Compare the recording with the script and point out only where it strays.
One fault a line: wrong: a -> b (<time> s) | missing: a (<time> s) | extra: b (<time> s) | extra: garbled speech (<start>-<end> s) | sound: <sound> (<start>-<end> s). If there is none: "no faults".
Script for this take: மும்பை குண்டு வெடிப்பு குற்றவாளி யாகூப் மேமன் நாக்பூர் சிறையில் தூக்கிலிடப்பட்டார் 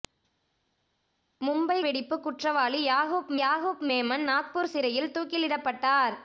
missing: குண்டு (1.8 s)
extra: யாகூப் (3.4 s)